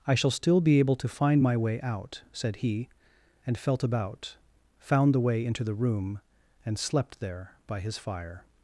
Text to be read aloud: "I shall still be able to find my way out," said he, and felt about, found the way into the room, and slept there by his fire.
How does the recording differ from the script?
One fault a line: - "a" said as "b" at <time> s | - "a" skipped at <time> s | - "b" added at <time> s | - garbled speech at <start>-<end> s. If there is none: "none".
none